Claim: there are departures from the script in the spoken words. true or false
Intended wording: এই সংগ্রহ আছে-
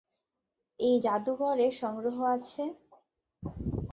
true